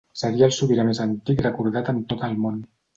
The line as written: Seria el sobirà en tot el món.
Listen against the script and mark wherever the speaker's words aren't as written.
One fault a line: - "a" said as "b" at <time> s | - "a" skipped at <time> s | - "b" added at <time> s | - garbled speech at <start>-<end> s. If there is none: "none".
- "més antic recordat" added at 0.9 s